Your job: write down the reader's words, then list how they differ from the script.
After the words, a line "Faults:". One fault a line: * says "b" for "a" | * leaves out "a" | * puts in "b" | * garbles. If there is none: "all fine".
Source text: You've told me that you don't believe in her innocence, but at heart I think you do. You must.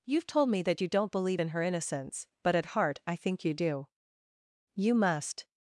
You've told me that you don't believe in her innocence, but at heart I think you do. You must.
Faults:
all fine